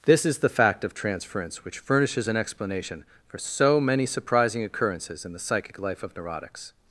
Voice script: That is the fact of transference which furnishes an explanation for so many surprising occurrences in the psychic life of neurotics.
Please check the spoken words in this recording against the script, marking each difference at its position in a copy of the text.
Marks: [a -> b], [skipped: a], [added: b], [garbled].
[That -> This] is the fact of transference which furnishes an explanation for so many surprising occurrences in the psychic life of neurotics.